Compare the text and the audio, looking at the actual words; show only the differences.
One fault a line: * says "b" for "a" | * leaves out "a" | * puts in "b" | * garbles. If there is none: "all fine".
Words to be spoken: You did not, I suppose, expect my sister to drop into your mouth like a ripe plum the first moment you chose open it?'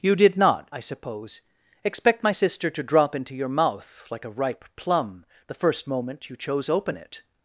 all fine